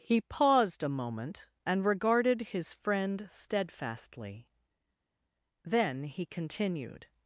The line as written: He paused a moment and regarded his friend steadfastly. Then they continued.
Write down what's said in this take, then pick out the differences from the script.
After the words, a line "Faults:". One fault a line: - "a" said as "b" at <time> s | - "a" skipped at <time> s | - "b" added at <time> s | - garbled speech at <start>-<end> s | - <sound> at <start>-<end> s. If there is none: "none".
He paused a moment and regarded his friend steadfastly. Then he continued.
Faults:
- "they" said as "he" at 6.0 s